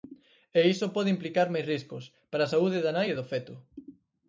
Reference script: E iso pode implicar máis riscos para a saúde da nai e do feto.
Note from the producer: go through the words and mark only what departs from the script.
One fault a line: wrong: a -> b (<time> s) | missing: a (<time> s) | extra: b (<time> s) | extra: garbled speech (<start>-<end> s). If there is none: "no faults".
no faults